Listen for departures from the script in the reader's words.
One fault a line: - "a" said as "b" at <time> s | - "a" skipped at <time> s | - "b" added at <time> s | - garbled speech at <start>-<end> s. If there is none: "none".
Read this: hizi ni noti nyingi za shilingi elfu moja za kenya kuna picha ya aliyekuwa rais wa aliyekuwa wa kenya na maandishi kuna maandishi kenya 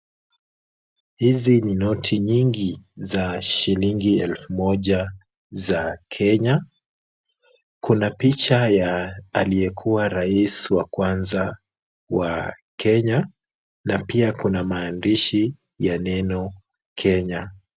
- "aliyekuwa" said as "kwanza" at 10.8 s
- "maandishi" said as "pia" at 14.0 s
- "ya neno" added at 15.8 s